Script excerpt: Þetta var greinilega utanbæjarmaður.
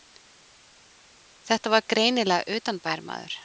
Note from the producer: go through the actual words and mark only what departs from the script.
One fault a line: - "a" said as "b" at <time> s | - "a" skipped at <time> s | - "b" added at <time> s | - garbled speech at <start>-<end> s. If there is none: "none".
none